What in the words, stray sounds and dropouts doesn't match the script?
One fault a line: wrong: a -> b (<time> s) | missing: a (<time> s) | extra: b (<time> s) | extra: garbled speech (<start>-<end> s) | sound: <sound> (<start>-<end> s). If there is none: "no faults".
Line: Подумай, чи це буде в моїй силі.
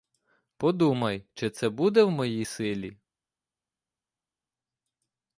no faults